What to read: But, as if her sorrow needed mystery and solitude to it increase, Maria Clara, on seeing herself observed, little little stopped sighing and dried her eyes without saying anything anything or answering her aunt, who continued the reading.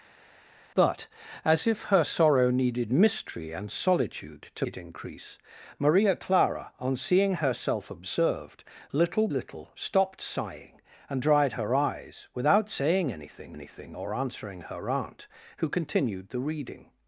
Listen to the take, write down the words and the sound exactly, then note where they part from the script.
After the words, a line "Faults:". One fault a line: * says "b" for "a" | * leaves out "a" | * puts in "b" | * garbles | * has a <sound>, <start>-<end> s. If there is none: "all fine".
But, as if her sorrow needed mystery and solitude to it increase, Maria Clara, on seeing herself observed, little little stopped sighing and dried her eyes without saying anything anything or answering her aunt, who continued the reading.
Faults:
all fine